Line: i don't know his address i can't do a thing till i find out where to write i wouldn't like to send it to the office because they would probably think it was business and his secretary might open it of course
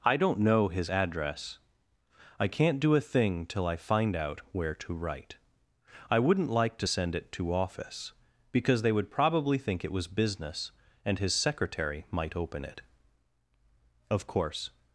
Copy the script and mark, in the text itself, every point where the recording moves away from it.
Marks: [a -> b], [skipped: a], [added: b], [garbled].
i don't know his address i can't do a thing till i find out where to write i wouldn't like to send it to [skipped: the] office because they would probably think it was business and his secretary might open it of course